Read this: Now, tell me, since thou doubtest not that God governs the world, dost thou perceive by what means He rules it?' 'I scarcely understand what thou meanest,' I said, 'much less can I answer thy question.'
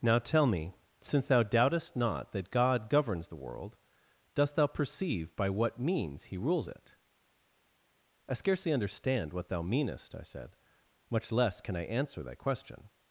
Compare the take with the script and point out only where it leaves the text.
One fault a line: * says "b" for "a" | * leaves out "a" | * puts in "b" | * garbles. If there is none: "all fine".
all fine